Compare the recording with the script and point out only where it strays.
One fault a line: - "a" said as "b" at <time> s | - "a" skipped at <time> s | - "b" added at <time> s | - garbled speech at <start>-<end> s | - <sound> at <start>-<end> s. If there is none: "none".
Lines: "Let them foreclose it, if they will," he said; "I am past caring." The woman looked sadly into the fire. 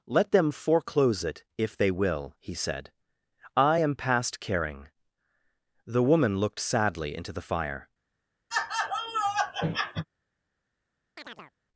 - laugh at 8.5-10.1 s
- chirp at 11.2-11.5 s